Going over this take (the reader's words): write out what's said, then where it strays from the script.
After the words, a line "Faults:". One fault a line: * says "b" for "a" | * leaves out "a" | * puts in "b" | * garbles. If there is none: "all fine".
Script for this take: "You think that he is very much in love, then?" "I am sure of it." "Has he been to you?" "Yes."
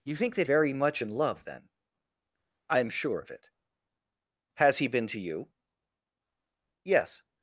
"You think that very much in love, then?" "I am sure of it." "Has he been to you?" "Yes."
Faults:
* leaves out "he is"